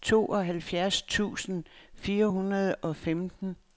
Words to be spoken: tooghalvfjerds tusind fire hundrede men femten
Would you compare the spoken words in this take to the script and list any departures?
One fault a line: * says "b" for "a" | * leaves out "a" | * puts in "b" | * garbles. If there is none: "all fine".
* says "og" for "men"